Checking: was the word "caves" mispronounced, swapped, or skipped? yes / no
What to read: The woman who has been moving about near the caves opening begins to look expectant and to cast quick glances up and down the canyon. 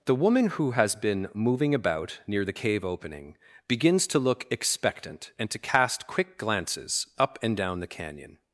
yes